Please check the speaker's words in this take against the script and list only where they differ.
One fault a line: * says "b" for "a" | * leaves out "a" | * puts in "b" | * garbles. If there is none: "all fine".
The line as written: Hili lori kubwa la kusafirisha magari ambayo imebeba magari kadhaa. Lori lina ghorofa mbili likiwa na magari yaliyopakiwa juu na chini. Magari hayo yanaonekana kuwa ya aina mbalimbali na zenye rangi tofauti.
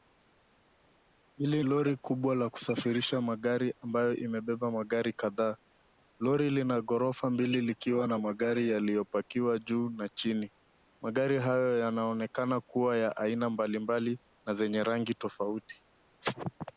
all fine